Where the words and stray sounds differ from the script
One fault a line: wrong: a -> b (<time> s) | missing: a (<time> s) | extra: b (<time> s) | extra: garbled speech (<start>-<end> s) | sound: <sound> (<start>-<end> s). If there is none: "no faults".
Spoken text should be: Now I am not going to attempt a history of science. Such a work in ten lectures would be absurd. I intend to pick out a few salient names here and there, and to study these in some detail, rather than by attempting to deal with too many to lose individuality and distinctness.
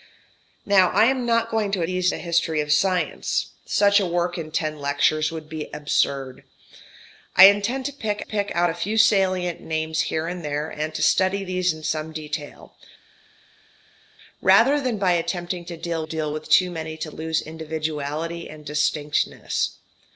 wrong: attempt -> these (1.8 s)
extra: pick (8.2 s)
extra: deal (16.0 s)